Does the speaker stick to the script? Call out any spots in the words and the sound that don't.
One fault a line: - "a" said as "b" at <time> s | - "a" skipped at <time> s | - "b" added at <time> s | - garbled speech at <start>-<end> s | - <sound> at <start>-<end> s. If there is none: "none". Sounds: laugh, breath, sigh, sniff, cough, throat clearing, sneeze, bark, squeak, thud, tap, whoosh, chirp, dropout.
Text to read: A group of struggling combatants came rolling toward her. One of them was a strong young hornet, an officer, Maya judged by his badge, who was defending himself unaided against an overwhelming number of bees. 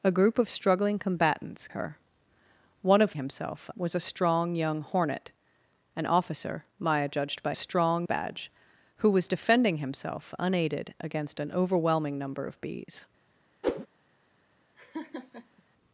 - "came rolling toward" skipped at 1.7 s
- "them" said as "himself" at 3.1 s
- "his" said as "strong" at 7.5 s
- whoosh at 13.6-13.9 s
- laugh at 14.8-15.6 s